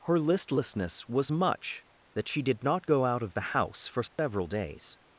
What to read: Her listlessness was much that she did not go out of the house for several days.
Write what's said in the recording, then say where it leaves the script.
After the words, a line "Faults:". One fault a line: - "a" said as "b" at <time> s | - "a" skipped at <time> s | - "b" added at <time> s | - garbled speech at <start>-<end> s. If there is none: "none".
Her listlessness was much that she did not go out of the house for several days.
Faults:
none